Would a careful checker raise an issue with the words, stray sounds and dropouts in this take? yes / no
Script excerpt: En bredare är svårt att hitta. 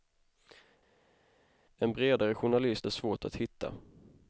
yes